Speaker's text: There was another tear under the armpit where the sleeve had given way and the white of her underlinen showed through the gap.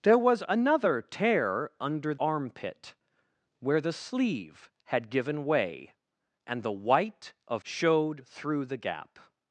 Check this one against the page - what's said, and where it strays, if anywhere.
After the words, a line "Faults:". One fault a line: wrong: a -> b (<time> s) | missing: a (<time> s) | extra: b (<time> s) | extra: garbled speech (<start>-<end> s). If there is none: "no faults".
There was another tear under armpit where the sleeve had given way and the white of showed through the gap.
Faults:
missing: the (2.1 s)
missing: her underlinen (7.6 s)